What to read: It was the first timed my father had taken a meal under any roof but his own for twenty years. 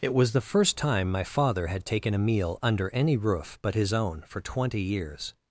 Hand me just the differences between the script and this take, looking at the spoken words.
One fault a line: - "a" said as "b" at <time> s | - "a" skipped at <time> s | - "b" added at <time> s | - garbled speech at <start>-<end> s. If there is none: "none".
- "timed" said as "time" at 0.8 s